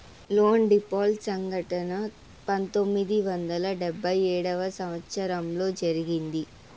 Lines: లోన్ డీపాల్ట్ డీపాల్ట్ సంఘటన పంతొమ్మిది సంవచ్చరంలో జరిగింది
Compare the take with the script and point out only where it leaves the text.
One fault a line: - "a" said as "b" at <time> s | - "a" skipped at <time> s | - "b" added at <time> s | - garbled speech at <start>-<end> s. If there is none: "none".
- "డీపాల్ట్" skipped at 1.2 s
- "వందల డెబ్భై ఏడవ" added at 3.3 s